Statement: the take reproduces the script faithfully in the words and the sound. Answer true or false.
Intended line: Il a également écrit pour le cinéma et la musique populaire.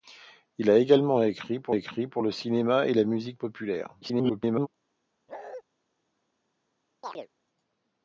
false